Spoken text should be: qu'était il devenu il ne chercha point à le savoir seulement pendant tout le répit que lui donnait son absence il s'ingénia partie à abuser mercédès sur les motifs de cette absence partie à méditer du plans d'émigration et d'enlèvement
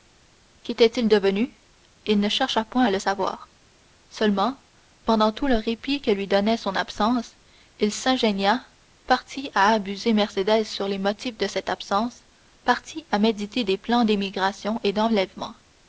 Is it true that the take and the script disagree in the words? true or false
true